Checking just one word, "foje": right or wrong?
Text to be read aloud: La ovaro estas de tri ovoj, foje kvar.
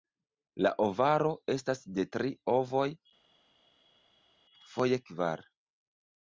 right